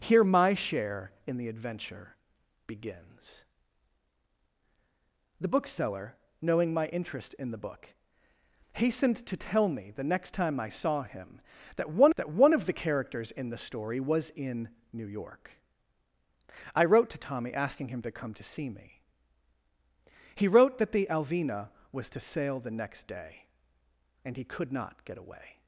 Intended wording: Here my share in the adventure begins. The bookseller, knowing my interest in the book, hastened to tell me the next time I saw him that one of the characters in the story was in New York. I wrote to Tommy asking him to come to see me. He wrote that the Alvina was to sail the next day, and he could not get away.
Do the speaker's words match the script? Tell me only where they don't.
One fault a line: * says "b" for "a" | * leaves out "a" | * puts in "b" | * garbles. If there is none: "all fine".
* puts in "that one"